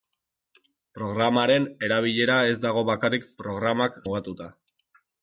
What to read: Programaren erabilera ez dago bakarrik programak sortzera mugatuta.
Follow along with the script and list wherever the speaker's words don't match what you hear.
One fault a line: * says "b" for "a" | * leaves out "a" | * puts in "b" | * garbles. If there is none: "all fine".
* leaves out "sortzera"